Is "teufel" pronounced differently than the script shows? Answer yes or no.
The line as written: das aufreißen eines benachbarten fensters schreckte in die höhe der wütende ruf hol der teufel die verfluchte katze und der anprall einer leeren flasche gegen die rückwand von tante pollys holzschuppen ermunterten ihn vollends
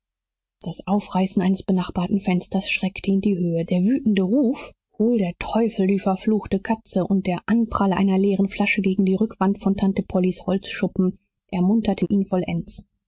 no